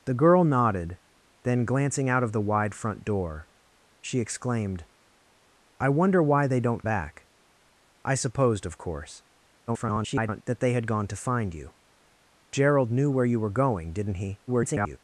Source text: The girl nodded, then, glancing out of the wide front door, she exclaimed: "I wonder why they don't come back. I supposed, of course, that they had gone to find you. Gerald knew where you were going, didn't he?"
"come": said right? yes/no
no